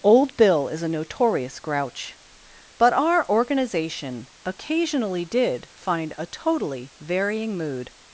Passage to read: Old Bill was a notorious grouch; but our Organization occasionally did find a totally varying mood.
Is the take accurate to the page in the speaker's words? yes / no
no